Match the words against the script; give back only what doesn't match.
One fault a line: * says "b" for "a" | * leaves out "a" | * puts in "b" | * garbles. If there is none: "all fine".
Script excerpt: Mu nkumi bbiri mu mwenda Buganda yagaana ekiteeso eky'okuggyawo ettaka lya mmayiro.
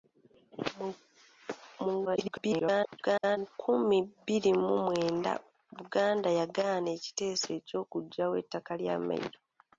* garbles